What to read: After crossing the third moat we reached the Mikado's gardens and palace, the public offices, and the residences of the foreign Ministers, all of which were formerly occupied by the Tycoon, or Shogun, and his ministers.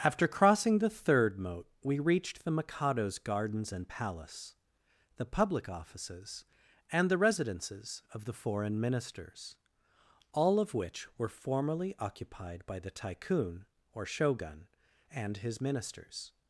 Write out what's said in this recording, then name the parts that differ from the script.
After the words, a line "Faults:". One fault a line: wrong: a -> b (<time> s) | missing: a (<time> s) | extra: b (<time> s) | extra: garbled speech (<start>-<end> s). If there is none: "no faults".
After crossing the third moat we reached the Mikado's gardens and palace, the public offices, and the residences of the foreign Ministers, all of which were formerly occupied by the Tycoon, or Shogun, and his ministers.
Faults:
no faults